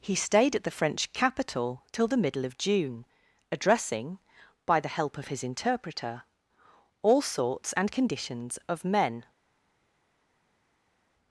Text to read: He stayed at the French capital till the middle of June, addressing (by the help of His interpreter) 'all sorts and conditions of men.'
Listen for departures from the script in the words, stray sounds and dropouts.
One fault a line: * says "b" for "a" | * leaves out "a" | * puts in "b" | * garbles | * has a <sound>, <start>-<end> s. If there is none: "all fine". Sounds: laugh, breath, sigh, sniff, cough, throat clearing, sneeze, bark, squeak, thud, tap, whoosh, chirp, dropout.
all fine